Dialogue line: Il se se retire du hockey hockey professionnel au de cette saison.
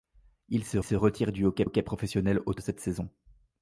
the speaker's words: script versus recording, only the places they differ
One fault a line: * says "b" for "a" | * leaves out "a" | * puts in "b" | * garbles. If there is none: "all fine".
all fine